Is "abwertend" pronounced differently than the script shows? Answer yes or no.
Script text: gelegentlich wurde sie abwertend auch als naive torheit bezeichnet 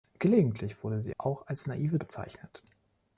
yes